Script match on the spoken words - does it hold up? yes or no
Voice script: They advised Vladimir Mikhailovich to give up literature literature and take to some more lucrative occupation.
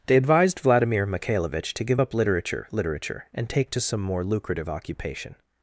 yes